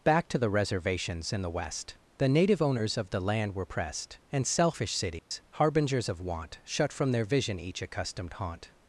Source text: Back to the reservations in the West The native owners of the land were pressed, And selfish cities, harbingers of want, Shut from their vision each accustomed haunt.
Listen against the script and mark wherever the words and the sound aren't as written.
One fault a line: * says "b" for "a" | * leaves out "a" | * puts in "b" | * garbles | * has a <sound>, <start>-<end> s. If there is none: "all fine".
* has a dropout, 5.2-5.3 s